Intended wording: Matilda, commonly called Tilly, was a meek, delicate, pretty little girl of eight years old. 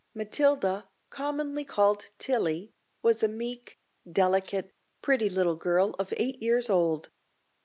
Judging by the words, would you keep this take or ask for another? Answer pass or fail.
pass